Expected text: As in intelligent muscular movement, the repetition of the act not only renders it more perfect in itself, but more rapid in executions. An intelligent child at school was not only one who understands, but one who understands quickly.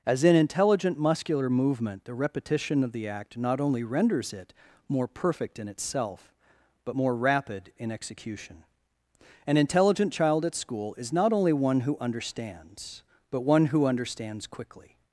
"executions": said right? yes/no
no